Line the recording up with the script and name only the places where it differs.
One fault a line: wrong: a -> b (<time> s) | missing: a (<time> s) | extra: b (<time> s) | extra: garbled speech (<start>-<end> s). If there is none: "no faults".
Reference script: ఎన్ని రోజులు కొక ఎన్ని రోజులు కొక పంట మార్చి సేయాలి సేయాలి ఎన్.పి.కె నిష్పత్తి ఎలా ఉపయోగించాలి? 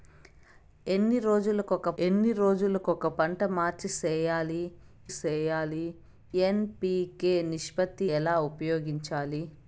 no faults